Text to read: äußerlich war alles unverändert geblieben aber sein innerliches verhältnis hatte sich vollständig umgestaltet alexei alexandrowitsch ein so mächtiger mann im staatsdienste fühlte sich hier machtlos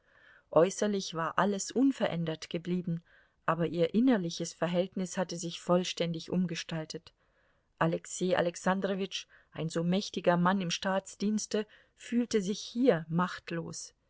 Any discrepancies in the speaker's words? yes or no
yes